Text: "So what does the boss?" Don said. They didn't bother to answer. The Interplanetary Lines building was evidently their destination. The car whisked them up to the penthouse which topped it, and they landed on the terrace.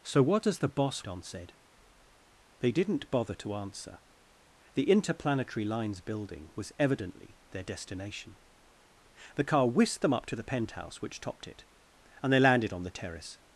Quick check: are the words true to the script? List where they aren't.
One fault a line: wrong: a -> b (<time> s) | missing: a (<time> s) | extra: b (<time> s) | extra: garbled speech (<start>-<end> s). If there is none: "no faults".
no faults